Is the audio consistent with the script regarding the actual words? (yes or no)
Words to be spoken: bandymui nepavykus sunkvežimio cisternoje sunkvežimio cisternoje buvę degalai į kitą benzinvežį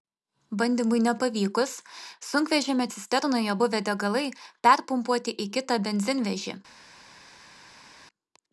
no